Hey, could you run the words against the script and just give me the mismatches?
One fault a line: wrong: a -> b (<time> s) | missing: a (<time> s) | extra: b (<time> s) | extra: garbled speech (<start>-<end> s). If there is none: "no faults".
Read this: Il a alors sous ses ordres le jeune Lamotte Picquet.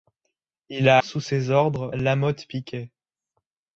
missing: alors (1.0 s)
missing: le jeune (1.9 s)